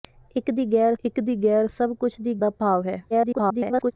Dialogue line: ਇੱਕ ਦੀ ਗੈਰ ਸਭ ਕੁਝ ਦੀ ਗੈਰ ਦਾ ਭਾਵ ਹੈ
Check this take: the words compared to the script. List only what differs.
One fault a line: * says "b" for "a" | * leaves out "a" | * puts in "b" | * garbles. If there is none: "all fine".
* puts in "ਇੱਕ ਦੀ ਗੈਰ"
* leaves out "ਗੈਰ"
* garbles